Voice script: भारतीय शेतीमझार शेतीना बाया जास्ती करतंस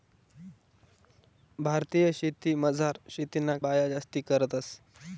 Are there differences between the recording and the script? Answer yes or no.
no